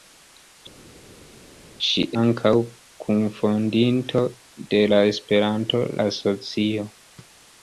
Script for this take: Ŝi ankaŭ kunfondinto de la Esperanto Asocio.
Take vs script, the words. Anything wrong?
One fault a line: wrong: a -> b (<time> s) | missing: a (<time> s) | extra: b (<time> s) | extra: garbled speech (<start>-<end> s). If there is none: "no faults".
no faults